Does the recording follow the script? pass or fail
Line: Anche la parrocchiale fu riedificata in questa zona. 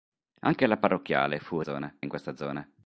fail